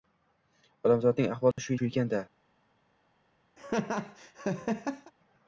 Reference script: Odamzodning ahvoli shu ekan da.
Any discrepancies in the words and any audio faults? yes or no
yes